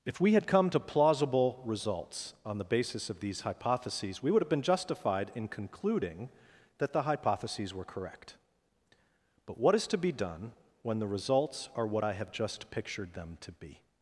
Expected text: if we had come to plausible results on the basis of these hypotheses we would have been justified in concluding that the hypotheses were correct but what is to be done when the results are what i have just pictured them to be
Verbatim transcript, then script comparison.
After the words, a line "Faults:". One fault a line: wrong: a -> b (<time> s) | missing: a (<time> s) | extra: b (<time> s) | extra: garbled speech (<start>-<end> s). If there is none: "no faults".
if we had come to plausible results on the basis of these hypotheses we would have been justified in concluding that the hypotheses were correct but what is to be done when the results are what i have just pictured them to be
Faults:
no faults